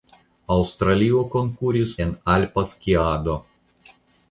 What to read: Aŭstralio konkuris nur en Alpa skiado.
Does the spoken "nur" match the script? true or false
false